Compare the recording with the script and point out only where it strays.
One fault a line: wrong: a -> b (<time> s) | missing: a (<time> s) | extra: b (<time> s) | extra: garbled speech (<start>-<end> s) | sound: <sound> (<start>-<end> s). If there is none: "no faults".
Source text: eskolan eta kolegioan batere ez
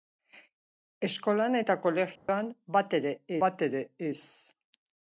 sound: dropout (2.2-2.3 s)
extra: batere (3.5 s)